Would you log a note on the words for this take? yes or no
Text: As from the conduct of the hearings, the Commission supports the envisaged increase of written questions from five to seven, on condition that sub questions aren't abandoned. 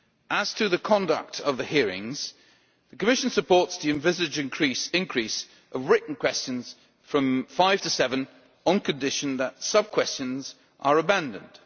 yes